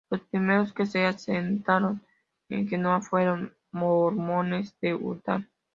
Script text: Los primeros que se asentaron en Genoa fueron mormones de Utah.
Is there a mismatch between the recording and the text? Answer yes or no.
no